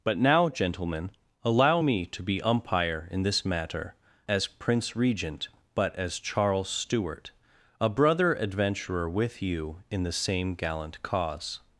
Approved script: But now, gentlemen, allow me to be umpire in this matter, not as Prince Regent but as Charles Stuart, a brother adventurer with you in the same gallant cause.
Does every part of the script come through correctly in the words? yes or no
no